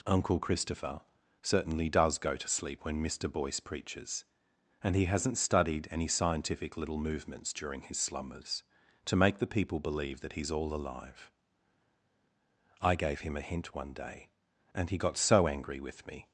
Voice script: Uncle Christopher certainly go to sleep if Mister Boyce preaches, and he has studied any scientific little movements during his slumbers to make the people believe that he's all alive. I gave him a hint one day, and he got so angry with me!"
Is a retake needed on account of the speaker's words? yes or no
yes